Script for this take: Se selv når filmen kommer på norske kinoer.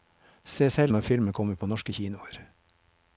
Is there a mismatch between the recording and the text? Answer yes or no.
no